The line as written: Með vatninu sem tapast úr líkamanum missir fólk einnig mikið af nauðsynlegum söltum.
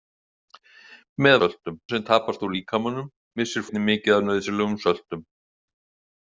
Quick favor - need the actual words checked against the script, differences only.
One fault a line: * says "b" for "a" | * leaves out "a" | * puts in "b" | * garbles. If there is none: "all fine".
* says "söltum" for "vatninu"
* leaves out "fólk"